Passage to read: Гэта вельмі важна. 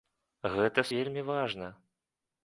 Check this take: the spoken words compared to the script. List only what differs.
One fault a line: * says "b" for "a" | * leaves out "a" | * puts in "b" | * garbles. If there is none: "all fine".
all fine